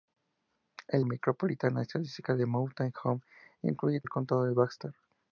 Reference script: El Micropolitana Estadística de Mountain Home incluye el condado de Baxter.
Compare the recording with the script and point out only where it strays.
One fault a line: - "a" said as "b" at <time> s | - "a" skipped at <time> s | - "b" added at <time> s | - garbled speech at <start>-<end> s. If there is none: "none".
none